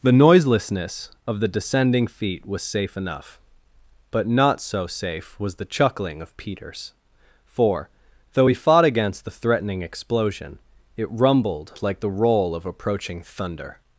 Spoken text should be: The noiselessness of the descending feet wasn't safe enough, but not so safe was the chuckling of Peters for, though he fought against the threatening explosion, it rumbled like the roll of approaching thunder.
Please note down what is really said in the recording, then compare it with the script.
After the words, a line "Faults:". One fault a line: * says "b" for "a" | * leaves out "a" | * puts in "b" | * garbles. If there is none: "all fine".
The noiselessness of the descending feet was safe enough, but not so safe was the chuckling of Peters for, though he fought against the threatening explosion, it rumbled like the roll of approaching thunder.
Faults:
* says "was" for "wasn't"